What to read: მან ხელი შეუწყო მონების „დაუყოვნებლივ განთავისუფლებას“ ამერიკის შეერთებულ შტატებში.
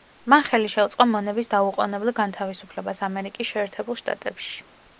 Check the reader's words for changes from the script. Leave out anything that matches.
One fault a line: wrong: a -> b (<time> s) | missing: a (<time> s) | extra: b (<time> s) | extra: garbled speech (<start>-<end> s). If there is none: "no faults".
no faults